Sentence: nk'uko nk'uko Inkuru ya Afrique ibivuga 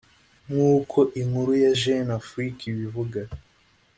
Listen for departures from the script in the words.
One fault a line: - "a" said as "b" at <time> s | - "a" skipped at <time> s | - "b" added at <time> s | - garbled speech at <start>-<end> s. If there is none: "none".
- "nk'uko" skipped at 1.0 s
- "Jeune" added at 1.8 s